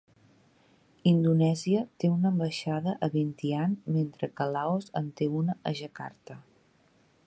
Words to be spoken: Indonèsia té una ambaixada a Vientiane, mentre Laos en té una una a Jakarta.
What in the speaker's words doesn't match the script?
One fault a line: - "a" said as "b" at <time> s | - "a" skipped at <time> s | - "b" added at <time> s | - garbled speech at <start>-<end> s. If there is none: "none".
- "que" added at 4.4 s
- "una" skipped at 5.6 s